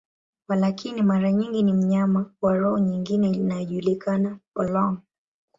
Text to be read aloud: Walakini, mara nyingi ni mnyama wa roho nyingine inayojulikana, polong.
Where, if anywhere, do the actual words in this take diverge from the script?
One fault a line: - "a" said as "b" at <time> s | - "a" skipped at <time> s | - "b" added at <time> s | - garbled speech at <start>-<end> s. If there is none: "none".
none